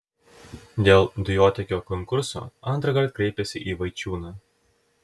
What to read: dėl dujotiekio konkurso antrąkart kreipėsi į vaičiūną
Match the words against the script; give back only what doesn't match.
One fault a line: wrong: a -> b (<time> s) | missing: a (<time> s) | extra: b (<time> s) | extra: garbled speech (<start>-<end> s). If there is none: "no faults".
no faults